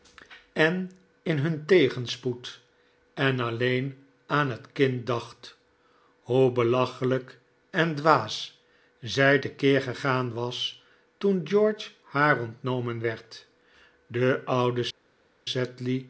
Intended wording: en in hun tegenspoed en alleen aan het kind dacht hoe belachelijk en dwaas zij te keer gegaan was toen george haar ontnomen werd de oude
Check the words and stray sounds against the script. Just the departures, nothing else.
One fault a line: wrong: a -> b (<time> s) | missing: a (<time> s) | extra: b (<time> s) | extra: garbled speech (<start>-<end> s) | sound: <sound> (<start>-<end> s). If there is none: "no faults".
no faults